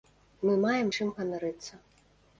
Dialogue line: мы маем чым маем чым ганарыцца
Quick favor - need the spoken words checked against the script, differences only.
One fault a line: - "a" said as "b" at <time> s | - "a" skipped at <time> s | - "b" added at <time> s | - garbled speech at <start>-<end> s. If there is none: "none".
- "маем чым" skipped at 1.1 s